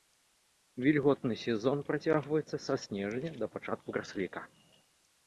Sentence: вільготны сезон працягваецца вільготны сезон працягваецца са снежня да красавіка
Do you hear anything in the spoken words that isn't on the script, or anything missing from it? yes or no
yes